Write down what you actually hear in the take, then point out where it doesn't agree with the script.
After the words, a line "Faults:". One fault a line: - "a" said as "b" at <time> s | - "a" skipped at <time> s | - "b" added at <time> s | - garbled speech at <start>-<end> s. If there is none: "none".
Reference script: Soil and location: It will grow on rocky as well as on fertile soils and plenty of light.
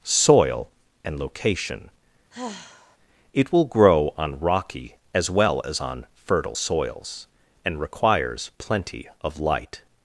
Soil and location: It will grow on rocky as well as on fertile soils and requires plenty of light.
Faults:
- "requires" added at 7.8 s